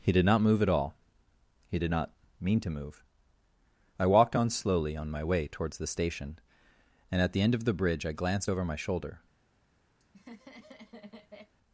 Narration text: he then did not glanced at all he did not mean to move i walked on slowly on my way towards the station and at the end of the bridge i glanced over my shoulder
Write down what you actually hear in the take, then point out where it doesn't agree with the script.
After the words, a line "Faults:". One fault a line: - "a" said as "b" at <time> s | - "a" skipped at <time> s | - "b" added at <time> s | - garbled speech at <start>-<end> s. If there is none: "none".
he did not move at all he did not mean to move i walked on slowly on my way towards the station and at the end of the bridge i glanced over my shoulder
Faults:
- "then" skipped at 0.1 s
- "glanced" said as "move" at 0.4 s